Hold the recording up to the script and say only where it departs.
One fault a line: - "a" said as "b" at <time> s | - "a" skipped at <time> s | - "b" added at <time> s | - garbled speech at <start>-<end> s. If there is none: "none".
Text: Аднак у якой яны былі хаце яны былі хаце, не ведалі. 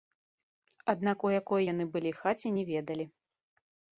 - "яны былі хаце" skipped at 2.5 s